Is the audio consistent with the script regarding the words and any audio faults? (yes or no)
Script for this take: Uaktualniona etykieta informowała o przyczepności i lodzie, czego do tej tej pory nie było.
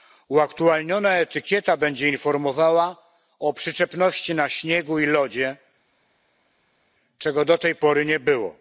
no